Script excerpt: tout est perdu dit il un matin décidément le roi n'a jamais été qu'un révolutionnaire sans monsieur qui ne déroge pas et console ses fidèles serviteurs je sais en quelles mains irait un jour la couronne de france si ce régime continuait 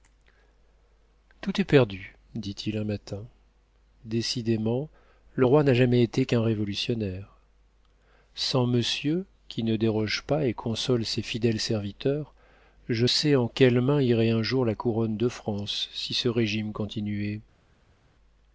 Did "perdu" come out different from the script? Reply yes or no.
no